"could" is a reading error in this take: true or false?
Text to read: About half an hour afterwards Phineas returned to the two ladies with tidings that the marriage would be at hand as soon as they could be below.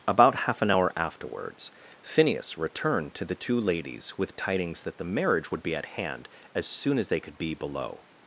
false